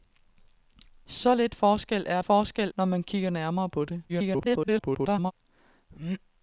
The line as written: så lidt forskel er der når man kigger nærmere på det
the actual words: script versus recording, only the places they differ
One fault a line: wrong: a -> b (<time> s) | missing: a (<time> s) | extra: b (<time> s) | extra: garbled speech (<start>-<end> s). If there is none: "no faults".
wrong: der -> forskel (2.2 s)
extra: garbled speech (4.1-5.3 s)